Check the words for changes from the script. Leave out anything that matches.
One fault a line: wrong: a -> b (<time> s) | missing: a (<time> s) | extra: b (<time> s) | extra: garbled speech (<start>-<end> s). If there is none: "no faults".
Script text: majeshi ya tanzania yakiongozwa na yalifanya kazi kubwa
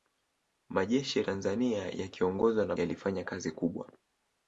no faults